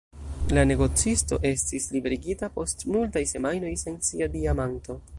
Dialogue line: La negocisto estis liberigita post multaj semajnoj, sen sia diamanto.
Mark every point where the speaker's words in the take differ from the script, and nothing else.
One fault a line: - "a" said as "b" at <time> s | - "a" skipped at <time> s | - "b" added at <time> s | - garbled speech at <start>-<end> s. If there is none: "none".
none